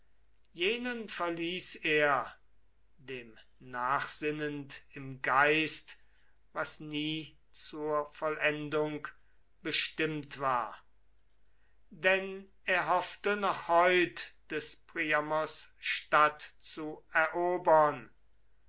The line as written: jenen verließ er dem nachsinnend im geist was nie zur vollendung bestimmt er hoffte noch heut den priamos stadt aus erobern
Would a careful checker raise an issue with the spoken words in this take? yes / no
yes